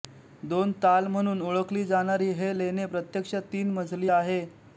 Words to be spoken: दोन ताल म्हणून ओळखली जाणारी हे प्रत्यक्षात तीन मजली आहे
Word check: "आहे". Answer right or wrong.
right